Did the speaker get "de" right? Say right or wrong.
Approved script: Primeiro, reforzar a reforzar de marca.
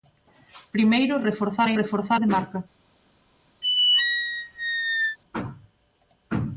right